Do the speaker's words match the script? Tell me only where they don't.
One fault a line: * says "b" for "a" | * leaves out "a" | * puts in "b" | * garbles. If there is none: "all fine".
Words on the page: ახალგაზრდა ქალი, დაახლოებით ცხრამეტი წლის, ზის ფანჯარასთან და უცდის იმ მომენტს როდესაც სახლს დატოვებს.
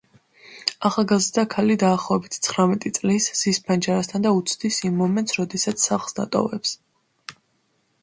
all fine